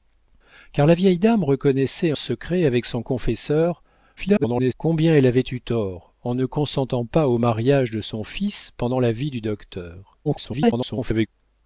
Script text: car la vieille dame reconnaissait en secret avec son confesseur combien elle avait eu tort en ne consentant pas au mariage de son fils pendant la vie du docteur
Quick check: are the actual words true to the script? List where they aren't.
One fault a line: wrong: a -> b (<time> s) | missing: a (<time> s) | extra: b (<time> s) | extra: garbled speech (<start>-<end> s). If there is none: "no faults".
missing: en (2.1 s)
extra: garbled speech (4.2-4.7 s)
extra: garbled speech (10.2-11.3 s)